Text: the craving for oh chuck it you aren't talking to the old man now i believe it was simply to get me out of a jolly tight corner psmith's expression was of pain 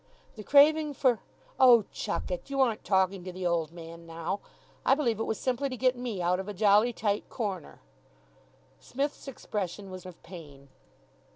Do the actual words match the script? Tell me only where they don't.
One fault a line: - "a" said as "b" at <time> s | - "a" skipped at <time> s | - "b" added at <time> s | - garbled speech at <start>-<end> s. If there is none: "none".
none